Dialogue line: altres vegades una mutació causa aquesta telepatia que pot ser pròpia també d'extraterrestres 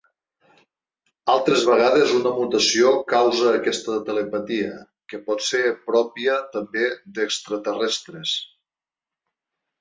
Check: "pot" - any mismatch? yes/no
no